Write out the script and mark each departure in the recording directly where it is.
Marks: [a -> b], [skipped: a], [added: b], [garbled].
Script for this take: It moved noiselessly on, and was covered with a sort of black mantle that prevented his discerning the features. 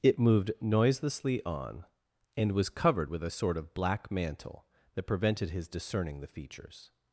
It moved noiselessly on, and was covered with a sort of black mantle that prevented his discerning the features.